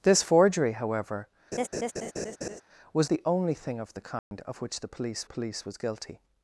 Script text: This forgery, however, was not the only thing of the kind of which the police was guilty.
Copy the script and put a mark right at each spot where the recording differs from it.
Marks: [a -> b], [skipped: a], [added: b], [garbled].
This forgery, however, was [skipped: not] the only thing of the kind of which the police [added: police] was guilty.